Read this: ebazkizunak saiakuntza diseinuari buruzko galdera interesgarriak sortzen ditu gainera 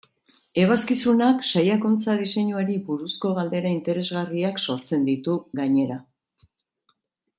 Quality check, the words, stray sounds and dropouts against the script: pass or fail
pass